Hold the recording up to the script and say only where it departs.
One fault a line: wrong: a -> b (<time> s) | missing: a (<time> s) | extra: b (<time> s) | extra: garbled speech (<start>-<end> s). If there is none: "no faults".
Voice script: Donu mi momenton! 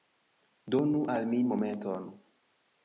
extra: al (1.1 s)